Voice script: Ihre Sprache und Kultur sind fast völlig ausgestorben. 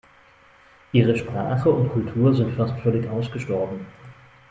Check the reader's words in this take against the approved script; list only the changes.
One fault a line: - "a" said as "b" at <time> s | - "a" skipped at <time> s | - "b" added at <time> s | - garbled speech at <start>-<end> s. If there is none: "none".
none